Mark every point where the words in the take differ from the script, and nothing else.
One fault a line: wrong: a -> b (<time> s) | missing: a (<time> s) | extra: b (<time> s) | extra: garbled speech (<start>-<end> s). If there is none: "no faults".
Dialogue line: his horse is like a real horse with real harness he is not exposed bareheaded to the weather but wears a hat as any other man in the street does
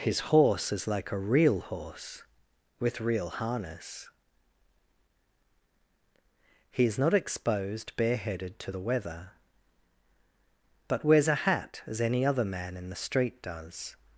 no faults